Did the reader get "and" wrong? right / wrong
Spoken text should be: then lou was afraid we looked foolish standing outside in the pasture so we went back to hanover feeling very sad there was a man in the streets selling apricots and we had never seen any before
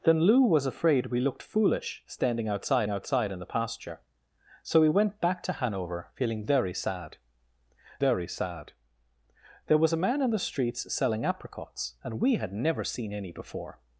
right